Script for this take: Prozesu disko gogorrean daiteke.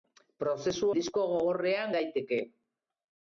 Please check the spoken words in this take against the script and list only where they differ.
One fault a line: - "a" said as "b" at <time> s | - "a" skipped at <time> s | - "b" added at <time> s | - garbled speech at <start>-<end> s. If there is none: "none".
none